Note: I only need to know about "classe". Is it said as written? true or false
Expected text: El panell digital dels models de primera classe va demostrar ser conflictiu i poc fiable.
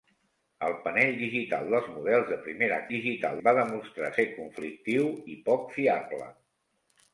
false